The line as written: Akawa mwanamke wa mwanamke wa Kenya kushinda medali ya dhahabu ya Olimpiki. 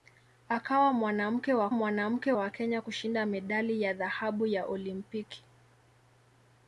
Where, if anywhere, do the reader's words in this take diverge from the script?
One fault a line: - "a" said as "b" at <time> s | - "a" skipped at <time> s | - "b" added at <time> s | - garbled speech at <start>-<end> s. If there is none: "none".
none